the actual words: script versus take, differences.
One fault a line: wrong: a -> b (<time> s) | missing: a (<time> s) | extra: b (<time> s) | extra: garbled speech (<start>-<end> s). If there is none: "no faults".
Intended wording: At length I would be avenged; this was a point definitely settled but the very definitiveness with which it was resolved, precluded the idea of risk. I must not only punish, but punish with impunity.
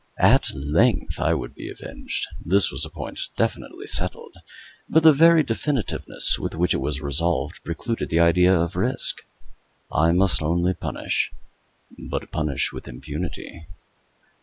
missing: not (10.4 s)